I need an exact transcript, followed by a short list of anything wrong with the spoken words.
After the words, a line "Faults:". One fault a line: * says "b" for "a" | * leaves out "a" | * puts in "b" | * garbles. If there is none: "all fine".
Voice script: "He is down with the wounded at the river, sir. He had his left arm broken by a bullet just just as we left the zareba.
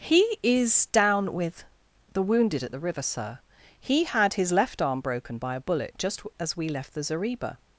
"He is down with the wounded at the river, sir. He had his left arm broken by a bullet just as we left the zareba.
Faults:
* leaves out "just"